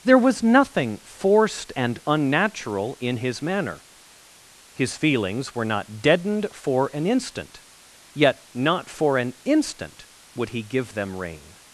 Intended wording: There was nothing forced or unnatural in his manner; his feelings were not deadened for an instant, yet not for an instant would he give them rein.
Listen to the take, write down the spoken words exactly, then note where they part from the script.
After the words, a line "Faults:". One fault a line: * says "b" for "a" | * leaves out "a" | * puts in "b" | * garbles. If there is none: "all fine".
There was nothing forced and unnatural in his manner; his feelings were not deadened for an instant, yet not for an instant would he give them rein.
Faults:
* says "and" for "or"